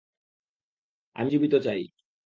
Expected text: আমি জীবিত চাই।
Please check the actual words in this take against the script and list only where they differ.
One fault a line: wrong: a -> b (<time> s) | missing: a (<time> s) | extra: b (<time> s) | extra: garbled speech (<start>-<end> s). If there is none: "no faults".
no faults